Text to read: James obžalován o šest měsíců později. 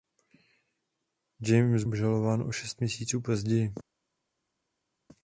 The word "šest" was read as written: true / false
true